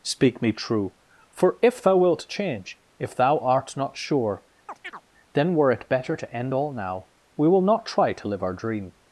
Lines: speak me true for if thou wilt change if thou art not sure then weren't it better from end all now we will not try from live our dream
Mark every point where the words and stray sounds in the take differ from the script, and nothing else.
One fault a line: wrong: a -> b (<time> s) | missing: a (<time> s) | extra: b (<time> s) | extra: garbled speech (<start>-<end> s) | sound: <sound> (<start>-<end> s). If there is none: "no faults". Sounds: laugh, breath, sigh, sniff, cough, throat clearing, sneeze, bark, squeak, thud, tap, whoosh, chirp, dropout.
sound: chirp (4.7-5.0 s)
wrong: weren't -> were (5.5 s)
wrong: from -> to (6.1 s)
wrong: from -> to (8.1 s)